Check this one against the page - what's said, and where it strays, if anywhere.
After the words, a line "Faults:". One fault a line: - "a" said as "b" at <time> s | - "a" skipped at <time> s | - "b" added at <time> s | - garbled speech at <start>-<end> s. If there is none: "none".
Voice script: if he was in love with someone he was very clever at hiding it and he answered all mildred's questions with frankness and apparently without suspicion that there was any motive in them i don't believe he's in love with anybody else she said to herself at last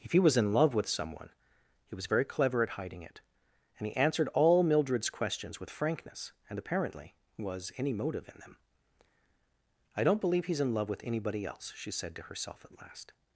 if he was in love with someone he was very clever at hiding it and he answered all mildred's questions with frankness and apparently was any motive in them i don't believe he's in love with anybody else she said to herself at last
Faults:
- "without suspicion that there" skipped at 7.1 s